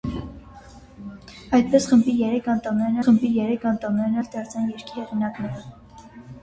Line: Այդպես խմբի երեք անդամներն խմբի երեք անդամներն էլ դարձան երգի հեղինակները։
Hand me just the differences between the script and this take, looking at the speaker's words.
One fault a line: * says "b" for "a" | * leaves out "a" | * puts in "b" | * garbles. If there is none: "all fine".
all fine